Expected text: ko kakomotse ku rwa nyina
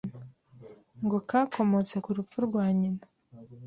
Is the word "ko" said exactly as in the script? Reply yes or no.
no